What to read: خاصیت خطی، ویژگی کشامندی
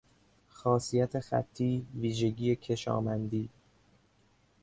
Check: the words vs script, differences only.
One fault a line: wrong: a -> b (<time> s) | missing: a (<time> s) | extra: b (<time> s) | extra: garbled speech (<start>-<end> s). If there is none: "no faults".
no faults